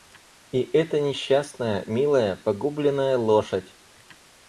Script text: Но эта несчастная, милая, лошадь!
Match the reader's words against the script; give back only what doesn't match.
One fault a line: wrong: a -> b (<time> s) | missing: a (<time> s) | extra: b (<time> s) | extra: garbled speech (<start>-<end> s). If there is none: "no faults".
wrong: Но -> И (0.5 s)
extra: погубленная (2.4 s)